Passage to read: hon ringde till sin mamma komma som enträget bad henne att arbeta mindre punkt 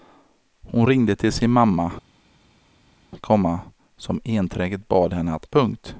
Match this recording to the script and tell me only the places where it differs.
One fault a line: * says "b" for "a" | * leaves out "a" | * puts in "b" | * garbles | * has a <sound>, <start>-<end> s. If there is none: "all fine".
* leaves out "arbeta mindre"